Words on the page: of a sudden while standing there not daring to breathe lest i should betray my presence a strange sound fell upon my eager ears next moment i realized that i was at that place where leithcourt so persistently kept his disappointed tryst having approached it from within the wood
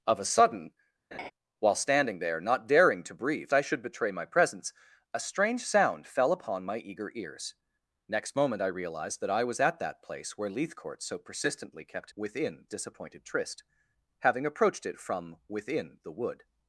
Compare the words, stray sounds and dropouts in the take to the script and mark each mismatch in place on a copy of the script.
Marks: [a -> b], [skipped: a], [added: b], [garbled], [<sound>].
of a sudden [laugh] while standing there not daring to breathe [skipped: lest] i should betray my presence a strange sound fell upon my eager ears next moment i realized that i was at that place where leithcourt so persistently kept [his -> within] disappointed tryst having approached it from within the wood